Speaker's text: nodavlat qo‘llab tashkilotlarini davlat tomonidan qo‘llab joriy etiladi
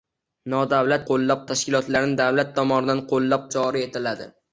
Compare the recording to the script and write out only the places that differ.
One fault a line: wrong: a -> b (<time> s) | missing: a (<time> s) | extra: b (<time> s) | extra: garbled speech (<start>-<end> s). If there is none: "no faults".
no faults